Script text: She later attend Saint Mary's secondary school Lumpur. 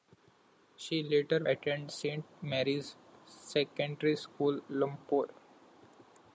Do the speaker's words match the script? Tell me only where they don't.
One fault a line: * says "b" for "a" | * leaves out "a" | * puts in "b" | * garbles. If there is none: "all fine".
all fine